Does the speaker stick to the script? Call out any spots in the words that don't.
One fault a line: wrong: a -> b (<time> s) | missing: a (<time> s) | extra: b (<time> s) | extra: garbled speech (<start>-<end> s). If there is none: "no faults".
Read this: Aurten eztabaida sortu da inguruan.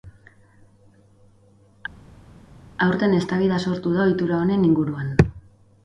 extra: ohitura honen (4.1 s)